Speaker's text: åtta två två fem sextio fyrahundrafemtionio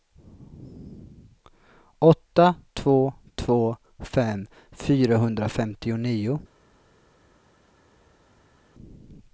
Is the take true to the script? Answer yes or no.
no